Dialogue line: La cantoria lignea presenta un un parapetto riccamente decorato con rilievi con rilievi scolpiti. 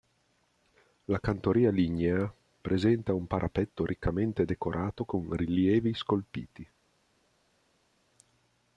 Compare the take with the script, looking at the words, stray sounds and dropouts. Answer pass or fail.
fail